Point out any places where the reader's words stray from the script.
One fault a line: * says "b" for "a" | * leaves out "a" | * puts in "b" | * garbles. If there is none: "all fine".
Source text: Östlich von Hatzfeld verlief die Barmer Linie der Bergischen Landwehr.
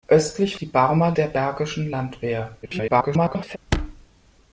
* leaves out "von Hatzfeld verlief"
* leaves out "Linie"
* garbles